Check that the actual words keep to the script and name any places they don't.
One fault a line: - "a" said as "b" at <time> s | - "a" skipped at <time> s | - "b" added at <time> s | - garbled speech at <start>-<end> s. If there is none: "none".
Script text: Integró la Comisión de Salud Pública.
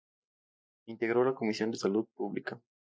none